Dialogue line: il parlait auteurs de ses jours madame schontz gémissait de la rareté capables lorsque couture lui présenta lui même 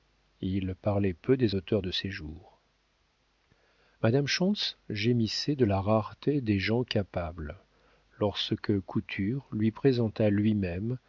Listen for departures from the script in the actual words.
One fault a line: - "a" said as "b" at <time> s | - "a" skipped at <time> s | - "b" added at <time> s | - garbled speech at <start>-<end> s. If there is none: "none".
- "peu des" added at 1.1 s
- "des gens" added at 6.4 s